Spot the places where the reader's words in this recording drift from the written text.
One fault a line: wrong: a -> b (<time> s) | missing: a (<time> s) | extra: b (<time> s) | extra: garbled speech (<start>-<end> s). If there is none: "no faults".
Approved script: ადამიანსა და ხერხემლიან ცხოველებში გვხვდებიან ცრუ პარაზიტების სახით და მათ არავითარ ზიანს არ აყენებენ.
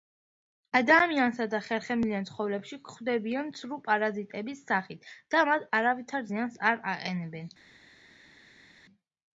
no faults